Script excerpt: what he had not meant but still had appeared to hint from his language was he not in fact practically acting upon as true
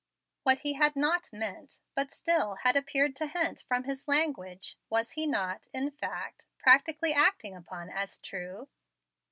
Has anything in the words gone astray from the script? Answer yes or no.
no